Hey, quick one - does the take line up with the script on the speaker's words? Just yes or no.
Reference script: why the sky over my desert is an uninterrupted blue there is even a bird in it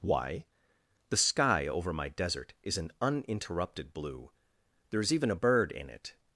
yes